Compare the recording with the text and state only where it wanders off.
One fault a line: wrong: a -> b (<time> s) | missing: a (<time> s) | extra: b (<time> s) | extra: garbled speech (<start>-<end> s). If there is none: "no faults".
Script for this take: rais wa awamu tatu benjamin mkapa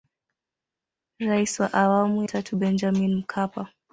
no faults